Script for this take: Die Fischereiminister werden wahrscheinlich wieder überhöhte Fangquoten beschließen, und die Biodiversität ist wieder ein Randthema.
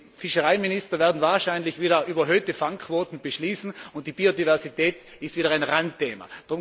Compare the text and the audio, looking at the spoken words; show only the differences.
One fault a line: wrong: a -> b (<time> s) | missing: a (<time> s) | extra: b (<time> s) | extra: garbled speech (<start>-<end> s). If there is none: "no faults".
no faults